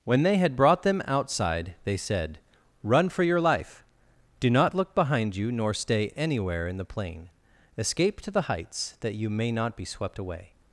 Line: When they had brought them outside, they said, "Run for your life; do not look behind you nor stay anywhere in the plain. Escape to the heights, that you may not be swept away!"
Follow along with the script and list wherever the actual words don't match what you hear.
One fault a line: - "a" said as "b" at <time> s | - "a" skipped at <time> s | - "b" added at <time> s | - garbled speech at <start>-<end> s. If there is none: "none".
none